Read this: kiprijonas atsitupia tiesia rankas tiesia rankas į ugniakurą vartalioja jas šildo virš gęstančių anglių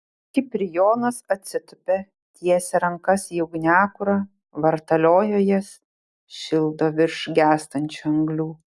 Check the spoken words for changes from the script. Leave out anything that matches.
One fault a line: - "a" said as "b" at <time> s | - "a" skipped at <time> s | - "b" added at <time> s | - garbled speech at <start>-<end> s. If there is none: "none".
- "tiesia rankas" skipped at 3.3 s